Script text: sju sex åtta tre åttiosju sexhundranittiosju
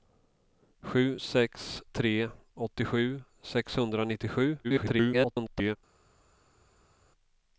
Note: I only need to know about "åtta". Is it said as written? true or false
false